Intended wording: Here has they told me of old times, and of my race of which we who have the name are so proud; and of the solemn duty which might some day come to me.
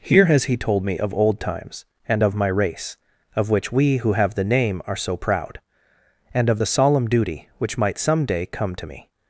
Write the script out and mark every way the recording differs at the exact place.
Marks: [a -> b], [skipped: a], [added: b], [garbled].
Here has [they -> he] told me of old times, and of my race of which we who have the name are so proud; and of the solemn duty which might some day come to me.